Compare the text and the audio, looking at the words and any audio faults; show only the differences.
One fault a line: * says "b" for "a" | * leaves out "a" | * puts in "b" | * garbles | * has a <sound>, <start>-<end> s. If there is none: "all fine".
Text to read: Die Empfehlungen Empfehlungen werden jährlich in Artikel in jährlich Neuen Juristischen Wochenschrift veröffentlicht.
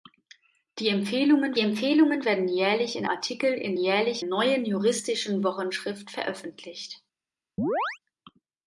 * has a chirp, 7.6-8.0 s